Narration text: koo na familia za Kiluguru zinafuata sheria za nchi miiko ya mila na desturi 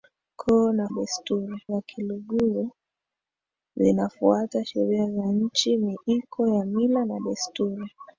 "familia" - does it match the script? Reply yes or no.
no